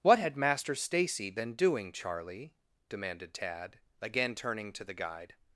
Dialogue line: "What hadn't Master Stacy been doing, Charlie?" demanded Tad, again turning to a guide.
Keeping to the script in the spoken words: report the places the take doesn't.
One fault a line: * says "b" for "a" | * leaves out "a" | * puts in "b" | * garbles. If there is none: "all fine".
* says "had" for "hadn't"
* says "the" for "a"